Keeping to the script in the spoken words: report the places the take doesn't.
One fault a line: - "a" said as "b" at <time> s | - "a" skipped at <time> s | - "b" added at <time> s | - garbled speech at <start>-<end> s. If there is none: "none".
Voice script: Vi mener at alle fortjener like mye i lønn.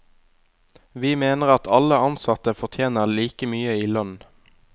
- "ansatte" added at 2.1 s